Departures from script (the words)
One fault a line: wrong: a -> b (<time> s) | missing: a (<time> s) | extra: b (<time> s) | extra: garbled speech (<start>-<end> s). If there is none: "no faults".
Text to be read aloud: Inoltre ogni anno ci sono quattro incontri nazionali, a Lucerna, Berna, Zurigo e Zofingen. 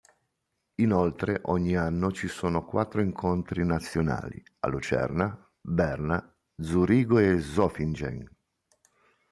no faults